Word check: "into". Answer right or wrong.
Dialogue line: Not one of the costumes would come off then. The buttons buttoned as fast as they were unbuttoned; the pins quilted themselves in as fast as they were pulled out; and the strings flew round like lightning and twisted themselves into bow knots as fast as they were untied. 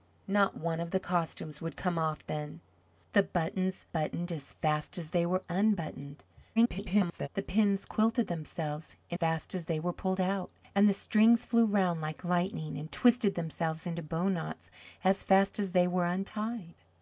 right